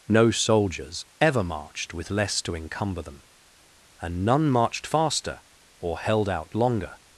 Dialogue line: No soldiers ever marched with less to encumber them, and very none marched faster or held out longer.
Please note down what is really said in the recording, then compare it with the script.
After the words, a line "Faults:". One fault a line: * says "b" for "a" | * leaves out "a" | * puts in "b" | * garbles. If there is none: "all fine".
No soldiers ever marched with less to encumber them, and none marched faster or held out longer.
Faults:
* leaves out "very"